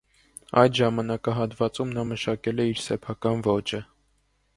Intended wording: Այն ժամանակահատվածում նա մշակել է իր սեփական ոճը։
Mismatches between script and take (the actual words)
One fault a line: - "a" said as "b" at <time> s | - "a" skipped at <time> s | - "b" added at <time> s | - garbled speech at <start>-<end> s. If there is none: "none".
- "Այն" said as "Այդ" at 0.6 s